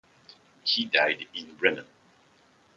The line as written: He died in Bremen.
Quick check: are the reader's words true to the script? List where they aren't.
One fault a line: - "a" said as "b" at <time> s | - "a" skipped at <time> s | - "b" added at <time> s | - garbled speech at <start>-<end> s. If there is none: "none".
none